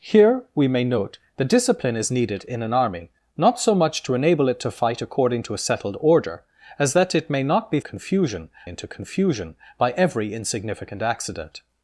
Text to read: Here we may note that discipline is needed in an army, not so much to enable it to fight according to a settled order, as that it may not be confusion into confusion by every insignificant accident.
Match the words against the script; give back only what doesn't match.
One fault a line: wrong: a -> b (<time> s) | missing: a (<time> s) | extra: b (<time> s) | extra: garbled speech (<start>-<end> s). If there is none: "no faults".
no faults